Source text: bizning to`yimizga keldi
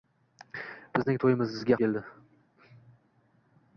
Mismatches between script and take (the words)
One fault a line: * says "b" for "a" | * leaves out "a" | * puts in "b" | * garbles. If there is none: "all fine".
all fine